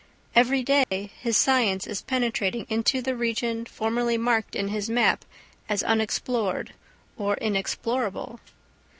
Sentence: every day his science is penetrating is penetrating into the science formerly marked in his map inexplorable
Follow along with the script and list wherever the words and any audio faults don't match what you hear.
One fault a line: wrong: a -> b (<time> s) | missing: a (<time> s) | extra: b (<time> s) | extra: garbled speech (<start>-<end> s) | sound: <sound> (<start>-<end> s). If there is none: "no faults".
sound: dropout (0.8-0.9 s)
missing: is penetrating (2.6 s)
wrong: science -> region (3.1 s)
extra: as unexplored or (5.7 s)